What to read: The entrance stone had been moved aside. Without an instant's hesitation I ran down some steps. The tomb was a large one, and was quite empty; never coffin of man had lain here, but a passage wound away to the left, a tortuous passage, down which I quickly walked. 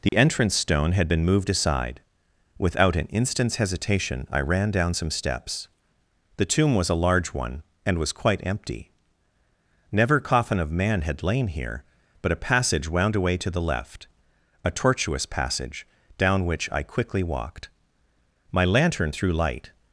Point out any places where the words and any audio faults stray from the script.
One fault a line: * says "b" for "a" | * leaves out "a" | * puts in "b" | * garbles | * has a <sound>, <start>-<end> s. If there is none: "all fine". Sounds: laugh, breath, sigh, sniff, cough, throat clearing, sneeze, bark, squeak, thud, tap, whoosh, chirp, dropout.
* has a dropout, 0.1-0.1 s
* puts in "My lantern threw light"